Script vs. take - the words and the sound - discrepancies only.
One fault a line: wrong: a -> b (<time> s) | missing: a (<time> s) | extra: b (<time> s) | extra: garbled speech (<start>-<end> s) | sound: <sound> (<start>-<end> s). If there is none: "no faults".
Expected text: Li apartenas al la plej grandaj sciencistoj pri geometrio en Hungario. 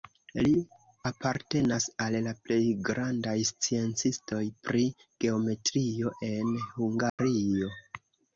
sound: dropout (7.1-7.2 s)